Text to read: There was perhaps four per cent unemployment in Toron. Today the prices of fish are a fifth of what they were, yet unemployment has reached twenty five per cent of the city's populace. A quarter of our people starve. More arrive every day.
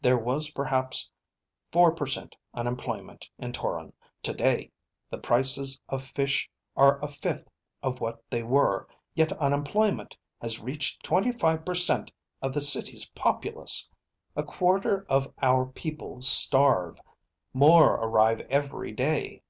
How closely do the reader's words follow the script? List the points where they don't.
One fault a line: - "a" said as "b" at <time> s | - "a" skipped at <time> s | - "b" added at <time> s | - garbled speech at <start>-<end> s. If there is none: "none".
none